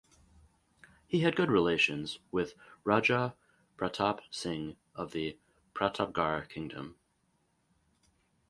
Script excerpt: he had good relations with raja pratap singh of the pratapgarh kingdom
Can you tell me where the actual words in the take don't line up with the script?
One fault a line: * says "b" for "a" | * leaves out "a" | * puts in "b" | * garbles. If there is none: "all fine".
all fine